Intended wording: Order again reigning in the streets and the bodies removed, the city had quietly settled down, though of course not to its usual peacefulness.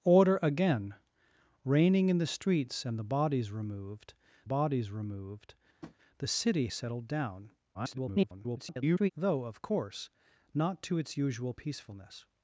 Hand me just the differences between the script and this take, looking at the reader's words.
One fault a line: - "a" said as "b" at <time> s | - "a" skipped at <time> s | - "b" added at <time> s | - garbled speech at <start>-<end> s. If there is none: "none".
- "bodies removed" added at 4.4 s
- "had quietly" skipped at 6.7 s
- garbled speech at 7.7-9.1 s